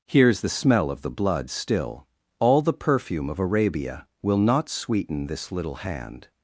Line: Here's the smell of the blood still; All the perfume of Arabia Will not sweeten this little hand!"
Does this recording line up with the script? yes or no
yes